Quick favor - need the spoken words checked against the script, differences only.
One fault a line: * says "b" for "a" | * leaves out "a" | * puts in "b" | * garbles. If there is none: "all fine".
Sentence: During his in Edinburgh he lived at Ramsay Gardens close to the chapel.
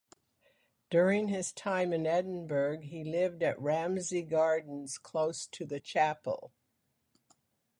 * puts in "time"